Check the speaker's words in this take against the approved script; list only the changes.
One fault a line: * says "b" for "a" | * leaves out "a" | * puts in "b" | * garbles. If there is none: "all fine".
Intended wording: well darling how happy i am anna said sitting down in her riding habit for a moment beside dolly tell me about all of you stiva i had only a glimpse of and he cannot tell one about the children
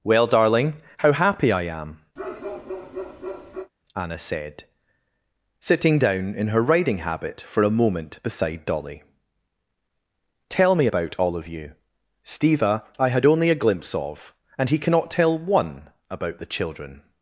all fine